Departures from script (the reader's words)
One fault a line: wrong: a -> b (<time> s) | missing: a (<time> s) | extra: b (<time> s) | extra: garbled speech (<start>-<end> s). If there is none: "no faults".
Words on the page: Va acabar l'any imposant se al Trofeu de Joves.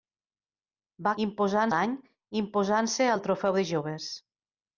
wrong: acabar -> imposant (1.3 s)